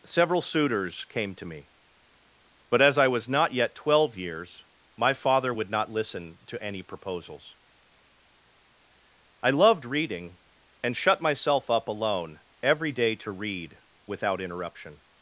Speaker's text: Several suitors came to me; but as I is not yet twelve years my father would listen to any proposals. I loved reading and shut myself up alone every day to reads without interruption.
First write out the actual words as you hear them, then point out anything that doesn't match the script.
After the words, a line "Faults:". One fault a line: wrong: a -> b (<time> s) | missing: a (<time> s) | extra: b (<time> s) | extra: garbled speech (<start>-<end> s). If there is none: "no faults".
Several suitors came to me; but as I was not yet twelve years my father would not listen to any proposals. I loved reading and shut myself up alone every day to read without interruption.
Faults:
wrong: is -> was (3.1 s)
extra: not (5.7 s)
wrong: reads -> read (13.3 s)